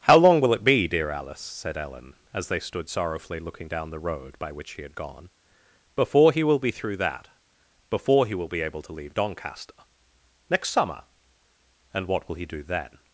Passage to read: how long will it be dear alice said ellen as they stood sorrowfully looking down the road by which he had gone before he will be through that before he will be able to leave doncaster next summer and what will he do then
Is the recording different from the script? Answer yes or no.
no